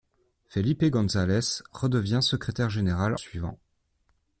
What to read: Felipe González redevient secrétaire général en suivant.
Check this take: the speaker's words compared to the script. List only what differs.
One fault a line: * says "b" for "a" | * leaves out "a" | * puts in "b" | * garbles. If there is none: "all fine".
* leaves out "en"